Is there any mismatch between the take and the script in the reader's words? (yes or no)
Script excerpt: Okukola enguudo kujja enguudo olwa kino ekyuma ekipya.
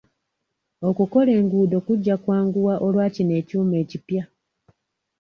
yes